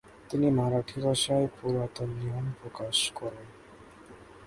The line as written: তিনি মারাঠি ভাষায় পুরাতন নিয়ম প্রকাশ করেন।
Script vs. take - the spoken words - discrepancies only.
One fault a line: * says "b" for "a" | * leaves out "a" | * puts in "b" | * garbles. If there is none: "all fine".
all fine